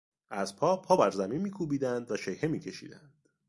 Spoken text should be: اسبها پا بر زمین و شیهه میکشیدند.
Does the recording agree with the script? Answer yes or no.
no